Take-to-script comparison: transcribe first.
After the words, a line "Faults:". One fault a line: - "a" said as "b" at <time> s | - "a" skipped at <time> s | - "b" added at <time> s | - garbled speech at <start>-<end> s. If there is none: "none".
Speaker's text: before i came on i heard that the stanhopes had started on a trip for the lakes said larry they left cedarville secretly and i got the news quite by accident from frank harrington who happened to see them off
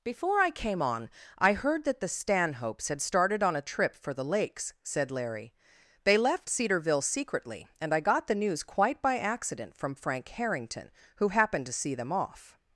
before i came on i heard that the stanhopes had started on a trip for the lakes said larry they left cedarville secretly and i got the news quite by accident from frank harrington who happened to see them off
Faults:
none